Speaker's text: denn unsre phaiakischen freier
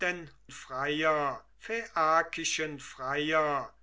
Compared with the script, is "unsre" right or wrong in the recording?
wrong